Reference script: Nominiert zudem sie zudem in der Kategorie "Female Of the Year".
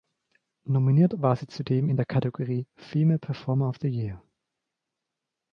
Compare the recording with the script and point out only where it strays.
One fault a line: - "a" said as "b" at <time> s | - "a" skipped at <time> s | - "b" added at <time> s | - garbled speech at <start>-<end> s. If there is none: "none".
- "zudem" said as "war" at 1.2 s
- "Performer" added at 3.2 s